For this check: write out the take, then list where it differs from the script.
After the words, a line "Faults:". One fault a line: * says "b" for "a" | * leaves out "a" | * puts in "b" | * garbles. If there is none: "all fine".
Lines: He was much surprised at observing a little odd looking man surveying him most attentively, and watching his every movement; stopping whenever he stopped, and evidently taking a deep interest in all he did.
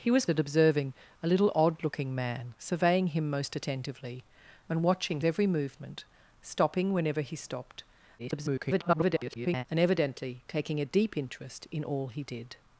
He was at observing a little odd looking man surveying him most attentively, and watching every movement; stopping whenever he stopped, [garbled] and evidently taking a deep interest in all he did.
Faults:
* leaves out "much surprised"
* leaves out "his"
* garbles